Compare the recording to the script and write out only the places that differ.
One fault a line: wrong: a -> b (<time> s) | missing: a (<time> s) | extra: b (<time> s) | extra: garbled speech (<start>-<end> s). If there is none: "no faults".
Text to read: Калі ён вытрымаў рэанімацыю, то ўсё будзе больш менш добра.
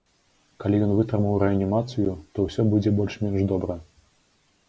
no faults